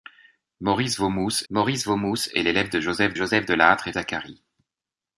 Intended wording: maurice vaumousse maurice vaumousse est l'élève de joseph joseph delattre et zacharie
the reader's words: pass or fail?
pass